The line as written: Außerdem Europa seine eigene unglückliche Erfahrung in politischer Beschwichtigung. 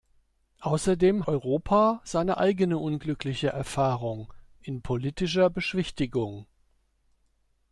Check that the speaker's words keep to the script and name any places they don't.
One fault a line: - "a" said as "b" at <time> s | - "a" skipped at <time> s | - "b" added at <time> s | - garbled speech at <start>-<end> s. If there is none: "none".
none